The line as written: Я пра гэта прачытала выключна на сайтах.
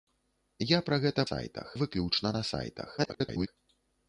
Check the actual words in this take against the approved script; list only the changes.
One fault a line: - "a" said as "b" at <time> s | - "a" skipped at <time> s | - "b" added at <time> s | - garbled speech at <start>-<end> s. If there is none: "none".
- "прачытала" said as "сайтах" at 1.3 s
- garbled speech at 3.0-3.5 s